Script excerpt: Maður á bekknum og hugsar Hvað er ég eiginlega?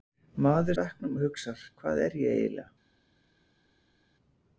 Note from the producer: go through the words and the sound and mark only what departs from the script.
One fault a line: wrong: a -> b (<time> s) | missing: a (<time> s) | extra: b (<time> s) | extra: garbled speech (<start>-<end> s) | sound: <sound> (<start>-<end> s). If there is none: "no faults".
no faults